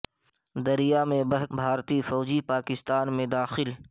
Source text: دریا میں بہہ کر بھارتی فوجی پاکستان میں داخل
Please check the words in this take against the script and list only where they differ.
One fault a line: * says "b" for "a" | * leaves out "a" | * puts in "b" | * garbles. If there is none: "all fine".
* leaves out "کر"